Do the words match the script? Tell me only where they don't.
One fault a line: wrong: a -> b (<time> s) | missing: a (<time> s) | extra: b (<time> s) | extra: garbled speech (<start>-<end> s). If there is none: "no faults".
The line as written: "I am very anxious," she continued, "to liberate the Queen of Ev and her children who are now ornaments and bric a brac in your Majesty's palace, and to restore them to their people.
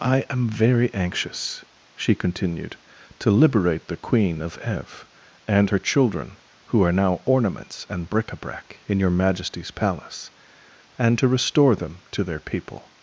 no faults